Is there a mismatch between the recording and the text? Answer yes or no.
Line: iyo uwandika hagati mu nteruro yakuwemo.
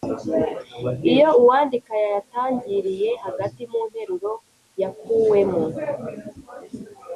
yes